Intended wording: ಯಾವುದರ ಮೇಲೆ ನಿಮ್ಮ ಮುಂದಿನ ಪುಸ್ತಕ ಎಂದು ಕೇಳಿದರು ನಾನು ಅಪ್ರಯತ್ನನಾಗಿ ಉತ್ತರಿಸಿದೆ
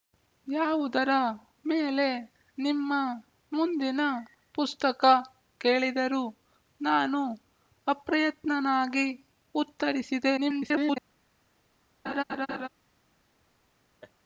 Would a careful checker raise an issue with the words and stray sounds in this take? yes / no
yes